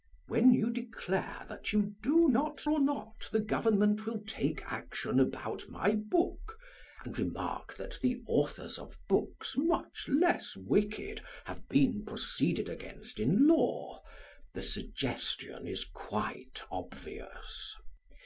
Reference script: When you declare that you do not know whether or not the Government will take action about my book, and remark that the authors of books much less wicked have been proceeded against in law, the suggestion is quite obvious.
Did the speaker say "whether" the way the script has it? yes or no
no